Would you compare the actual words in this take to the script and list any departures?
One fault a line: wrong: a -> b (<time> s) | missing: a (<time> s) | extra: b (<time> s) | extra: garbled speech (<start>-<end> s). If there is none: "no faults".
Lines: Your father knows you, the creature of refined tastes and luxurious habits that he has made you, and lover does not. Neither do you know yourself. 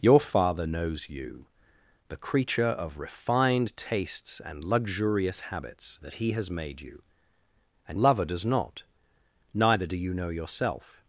no faults